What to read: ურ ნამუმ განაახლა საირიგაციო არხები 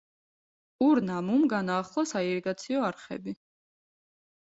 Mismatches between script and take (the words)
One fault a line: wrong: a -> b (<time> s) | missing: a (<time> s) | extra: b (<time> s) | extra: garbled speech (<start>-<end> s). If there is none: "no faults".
no faults